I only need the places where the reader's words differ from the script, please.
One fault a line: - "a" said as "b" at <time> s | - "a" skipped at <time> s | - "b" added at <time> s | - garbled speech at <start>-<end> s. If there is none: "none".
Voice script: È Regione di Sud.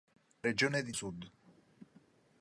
none